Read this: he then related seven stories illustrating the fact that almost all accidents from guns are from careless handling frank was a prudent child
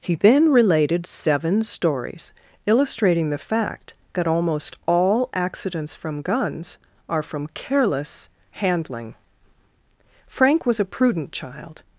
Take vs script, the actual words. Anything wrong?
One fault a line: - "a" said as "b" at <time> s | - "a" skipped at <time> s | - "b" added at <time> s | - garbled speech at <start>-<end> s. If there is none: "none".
none